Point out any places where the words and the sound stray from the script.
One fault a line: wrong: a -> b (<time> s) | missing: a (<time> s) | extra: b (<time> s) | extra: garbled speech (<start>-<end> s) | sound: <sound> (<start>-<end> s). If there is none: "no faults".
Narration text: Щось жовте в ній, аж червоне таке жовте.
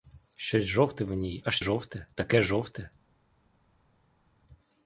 wrong: червоне -> жовте (1.6 s)